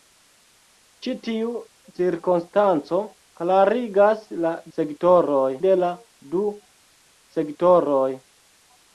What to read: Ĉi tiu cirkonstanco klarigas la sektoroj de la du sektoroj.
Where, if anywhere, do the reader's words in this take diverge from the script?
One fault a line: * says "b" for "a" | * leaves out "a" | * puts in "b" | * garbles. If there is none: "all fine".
all fine